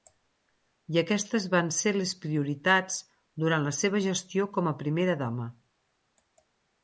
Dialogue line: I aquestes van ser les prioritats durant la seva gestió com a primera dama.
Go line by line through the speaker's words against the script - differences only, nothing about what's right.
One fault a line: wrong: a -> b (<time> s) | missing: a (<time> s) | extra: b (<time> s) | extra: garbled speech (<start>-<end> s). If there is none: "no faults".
no faults